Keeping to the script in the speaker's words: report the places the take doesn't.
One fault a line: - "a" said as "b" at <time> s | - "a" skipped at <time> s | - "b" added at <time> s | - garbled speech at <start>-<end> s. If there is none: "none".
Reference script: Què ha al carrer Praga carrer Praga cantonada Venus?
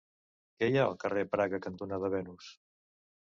- "hi" added at 0.7 s
- "carrer Praga" skipped at 1.6 s